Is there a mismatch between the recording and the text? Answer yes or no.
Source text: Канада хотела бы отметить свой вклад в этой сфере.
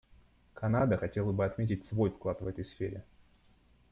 no